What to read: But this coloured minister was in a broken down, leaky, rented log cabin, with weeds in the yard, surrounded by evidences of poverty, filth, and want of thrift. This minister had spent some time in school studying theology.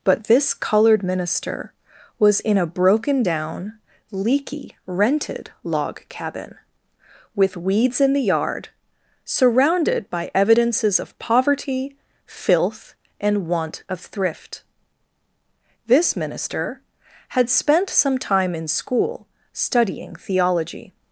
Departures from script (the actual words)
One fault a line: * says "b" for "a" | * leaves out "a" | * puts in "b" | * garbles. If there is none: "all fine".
all fine